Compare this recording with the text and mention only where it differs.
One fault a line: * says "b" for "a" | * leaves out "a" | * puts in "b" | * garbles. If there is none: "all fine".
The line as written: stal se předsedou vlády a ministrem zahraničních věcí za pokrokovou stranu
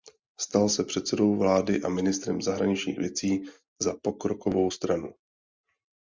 all fine